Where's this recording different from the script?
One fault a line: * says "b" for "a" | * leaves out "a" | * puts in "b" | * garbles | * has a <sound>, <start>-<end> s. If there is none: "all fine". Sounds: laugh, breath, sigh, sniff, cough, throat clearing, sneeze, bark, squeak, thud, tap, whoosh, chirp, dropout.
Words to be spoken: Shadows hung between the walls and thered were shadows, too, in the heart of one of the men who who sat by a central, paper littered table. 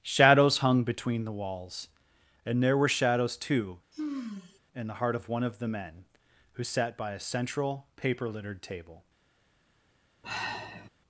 * says "there" for "thered"
* has a sigh, 3.9-4.6 s
* leaves out "who"
* has a sigh, 10.2-10.9 s